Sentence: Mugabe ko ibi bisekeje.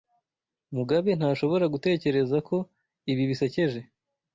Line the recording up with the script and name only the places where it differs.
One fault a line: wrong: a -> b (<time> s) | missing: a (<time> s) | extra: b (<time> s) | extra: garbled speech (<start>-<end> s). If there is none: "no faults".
extra: ntashobora gutekereza (1.2 s)